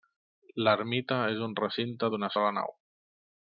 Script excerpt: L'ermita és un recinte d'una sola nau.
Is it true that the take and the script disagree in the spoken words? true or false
false